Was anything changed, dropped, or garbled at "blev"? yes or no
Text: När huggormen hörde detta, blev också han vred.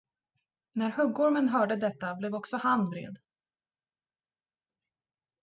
no